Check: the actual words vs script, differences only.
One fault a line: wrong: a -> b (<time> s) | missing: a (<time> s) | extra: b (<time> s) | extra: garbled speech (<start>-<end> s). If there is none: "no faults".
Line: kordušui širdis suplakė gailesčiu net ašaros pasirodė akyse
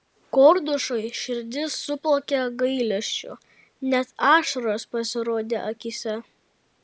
no faults